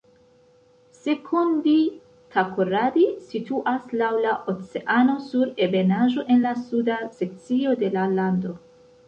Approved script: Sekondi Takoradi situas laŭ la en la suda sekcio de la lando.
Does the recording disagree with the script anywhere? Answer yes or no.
yes